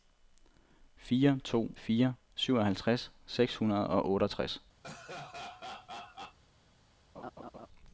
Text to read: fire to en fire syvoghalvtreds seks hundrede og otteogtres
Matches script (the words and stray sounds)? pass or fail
fail